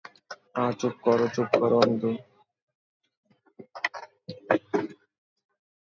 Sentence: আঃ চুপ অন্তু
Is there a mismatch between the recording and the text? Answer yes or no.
yes